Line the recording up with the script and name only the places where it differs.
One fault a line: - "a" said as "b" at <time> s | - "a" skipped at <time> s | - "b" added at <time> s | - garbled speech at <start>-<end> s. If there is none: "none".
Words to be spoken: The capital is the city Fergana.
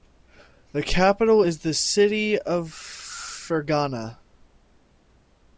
- "of" added at 2.4 s